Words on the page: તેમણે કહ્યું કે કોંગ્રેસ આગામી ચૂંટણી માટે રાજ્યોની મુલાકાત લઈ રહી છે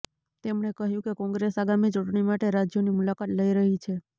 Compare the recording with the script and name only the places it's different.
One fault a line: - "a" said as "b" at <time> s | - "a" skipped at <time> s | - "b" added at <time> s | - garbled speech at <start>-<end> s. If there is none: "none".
none